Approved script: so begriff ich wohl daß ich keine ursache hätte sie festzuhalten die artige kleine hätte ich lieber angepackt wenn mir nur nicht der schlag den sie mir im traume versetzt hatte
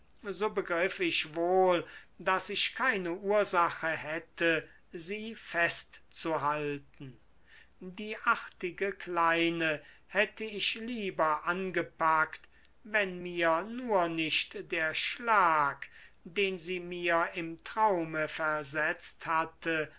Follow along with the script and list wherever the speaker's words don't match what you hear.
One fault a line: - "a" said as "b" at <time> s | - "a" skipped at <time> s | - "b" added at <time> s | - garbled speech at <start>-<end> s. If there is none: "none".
none